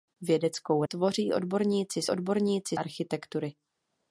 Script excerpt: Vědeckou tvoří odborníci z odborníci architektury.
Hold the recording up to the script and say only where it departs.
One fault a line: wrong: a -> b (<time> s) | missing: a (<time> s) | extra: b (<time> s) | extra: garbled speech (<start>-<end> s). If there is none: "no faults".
no faults